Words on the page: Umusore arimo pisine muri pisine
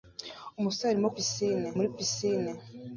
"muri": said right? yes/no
yes